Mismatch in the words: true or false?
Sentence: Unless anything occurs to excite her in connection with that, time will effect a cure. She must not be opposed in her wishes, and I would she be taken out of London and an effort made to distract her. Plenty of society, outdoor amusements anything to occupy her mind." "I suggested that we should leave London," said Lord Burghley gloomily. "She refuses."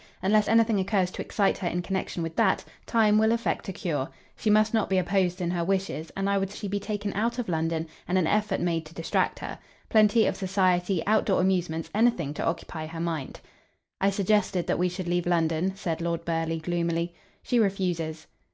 false